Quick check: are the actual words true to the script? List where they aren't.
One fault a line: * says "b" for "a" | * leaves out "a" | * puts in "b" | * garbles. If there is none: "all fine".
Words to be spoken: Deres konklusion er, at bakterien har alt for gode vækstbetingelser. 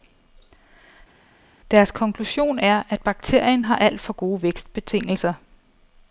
all fine